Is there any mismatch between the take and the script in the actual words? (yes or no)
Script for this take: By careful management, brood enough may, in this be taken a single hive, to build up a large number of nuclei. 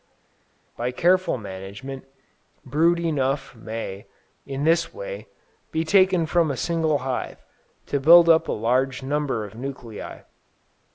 yes